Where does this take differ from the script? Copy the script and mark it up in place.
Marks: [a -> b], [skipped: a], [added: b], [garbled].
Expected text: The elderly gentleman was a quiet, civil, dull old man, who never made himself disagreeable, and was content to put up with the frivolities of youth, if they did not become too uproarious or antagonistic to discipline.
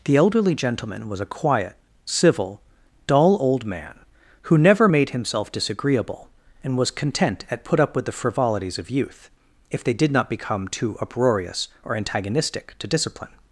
The elderly gentleman was a quiet, civil, dull old man, who never made himself disagreeable, and was content [to -> at] put up with the frivolities of youth, if they did not become too uproarious or antagonistic to discipline.